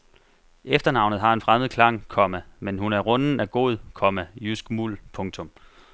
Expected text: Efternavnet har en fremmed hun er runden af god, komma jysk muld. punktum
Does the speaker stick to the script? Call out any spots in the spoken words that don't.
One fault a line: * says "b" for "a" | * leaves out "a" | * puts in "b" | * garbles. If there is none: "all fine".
* puts in "klang komma men"